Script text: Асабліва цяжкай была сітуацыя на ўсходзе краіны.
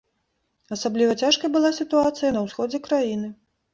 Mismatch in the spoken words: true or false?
false